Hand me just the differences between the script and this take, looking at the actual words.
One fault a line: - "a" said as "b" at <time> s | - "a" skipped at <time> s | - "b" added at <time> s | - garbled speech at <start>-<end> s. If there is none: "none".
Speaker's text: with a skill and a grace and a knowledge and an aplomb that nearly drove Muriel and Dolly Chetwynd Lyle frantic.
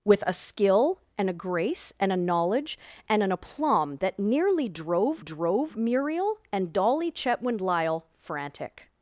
- "drove" added at 5.2 s